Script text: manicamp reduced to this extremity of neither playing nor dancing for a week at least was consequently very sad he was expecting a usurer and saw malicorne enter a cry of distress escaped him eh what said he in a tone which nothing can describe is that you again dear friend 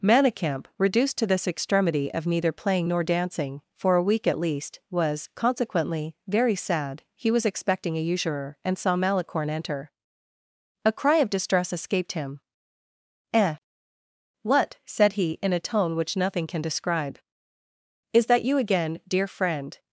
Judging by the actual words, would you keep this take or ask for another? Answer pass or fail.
pass